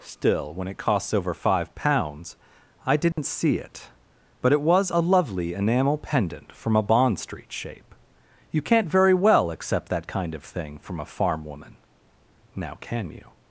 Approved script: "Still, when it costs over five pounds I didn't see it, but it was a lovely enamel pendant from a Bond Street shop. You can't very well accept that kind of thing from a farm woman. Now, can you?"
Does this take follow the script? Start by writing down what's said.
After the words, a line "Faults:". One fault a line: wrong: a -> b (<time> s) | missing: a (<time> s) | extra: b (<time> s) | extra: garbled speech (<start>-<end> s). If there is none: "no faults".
"Still, when it costs over five pounds I didn't see it, but it was a lovely enamel pendant from a Bond Street shape. You can't very well accept that kind of thing from a farm woman. Now, can you?"
Faults:
wrong: shop -> shape (7.5 s)